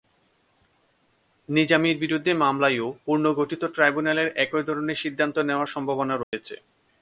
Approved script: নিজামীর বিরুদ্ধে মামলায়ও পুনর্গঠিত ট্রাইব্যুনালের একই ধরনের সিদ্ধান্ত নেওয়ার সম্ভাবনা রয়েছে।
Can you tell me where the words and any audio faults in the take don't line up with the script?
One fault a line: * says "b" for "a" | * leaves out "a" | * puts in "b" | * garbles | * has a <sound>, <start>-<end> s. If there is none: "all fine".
* has a dropout, 6.2-6.3 s